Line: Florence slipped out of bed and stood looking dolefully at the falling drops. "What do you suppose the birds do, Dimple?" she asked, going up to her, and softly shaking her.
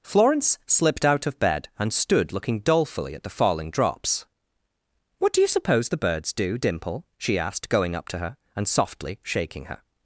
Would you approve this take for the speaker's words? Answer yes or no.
yes